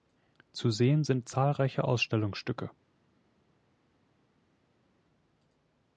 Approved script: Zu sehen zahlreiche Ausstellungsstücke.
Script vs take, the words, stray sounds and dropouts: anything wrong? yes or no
yes